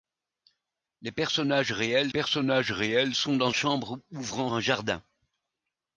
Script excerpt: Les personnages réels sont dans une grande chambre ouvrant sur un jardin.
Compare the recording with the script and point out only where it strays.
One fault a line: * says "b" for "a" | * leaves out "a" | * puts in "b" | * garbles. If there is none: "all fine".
* puts in "personnages réels"
* leaves out "une grande"
* leaves out "sur"